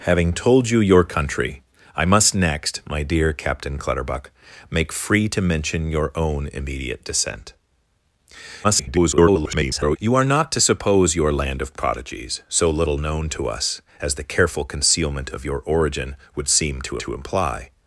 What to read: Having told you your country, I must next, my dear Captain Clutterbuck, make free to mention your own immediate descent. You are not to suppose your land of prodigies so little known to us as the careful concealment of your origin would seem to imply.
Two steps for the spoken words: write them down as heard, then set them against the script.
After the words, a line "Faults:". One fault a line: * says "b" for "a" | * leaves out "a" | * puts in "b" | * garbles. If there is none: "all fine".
Having told you your country, I must next, my dear Captain Clutterbuck, make free to mention your own immediate descent. [garbled] You are not to suppose your land of prodigies so little known to us as the careful concealment of your origin would seem to to imply.
Faults:
* garbles
* puts in "to"